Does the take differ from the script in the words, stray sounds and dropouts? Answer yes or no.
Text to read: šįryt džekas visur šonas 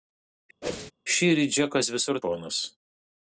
yes